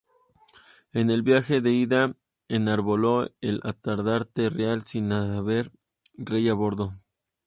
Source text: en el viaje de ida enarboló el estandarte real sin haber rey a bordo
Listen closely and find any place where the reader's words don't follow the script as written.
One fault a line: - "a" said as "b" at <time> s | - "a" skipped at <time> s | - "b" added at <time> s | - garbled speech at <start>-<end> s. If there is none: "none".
none